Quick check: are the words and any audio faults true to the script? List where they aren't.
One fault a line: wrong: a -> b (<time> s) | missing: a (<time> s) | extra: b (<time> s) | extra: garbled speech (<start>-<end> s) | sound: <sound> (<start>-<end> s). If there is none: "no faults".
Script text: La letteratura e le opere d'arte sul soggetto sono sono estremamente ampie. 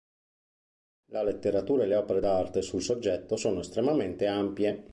missing: sono (3.6 s)